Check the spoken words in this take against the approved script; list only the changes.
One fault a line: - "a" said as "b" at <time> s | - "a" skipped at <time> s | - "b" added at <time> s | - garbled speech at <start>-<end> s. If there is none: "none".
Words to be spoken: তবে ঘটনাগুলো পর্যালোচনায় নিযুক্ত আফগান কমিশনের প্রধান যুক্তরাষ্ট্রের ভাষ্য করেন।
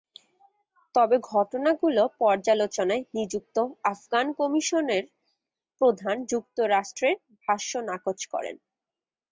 - "নাকচ" added at 7.9 s